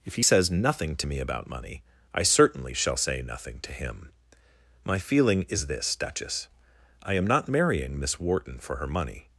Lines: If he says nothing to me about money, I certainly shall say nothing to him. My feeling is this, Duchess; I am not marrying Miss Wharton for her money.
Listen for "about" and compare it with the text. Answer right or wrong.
right